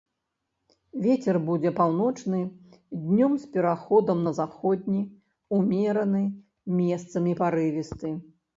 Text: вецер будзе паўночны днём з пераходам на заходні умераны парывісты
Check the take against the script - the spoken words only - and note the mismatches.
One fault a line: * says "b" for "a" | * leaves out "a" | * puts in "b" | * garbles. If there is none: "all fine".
* puts in "месцамі"